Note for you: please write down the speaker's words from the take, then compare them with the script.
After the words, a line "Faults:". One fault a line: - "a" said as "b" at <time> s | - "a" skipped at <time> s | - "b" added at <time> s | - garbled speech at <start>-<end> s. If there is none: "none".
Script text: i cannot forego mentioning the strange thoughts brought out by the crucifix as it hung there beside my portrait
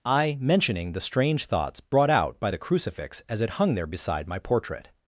i mentioning the strange thoughts brought out by the crucifix as it hung there beside my portrait
Faults:
- "cannot forego" skipped at 0.3 s